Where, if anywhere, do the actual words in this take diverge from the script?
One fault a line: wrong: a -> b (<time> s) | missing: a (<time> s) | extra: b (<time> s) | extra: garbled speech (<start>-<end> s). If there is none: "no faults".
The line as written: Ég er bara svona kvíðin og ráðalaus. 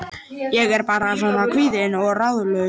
no faults